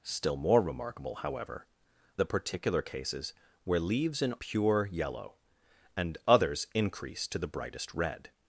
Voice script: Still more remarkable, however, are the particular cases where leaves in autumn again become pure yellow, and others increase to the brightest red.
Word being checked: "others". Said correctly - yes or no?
yes